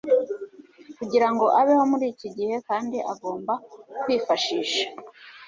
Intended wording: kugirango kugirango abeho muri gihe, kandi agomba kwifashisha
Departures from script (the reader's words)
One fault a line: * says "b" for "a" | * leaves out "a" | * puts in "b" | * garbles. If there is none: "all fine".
* leaves out "kugirango"
* puts in "iki"